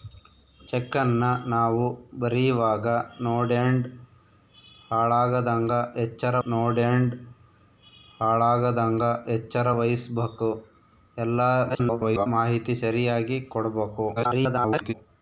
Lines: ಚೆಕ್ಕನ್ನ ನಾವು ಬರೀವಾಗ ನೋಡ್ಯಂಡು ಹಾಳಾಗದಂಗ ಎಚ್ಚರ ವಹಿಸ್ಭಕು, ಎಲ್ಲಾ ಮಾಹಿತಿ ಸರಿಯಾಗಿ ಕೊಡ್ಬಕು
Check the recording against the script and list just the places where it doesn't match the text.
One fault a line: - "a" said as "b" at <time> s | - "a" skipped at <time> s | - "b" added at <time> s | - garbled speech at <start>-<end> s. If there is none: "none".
- "ನೋಡ್ಯಂಡು ಹಾಳಾಗದಂಗ ಎಚ್ಚರ" added at 6.5 s
- garbled speech at 11.7-12.3 s
- garbled speech at 14.2-14.9 s